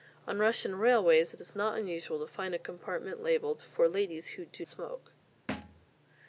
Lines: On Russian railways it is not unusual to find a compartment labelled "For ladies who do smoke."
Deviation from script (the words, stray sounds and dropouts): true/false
true